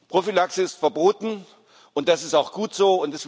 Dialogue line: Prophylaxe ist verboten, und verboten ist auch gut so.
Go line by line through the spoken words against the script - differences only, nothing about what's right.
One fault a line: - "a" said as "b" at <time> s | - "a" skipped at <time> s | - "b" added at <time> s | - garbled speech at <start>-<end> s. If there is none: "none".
- "verboten" said as "das" at 2.1 s